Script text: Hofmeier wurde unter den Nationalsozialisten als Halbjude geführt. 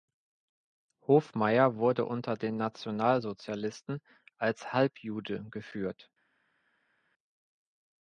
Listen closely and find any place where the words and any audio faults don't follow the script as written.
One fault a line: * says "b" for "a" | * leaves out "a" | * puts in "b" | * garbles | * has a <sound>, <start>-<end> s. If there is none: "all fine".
all fine